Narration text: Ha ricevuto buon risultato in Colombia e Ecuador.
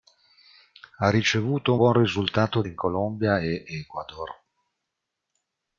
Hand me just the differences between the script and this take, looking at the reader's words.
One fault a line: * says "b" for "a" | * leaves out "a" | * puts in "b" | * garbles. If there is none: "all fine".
all fine